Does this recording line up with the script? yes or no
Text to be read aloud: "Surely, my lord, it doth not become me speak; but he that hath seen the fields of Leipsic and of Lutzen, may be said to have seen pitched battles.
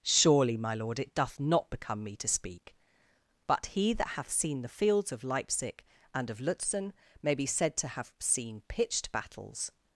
no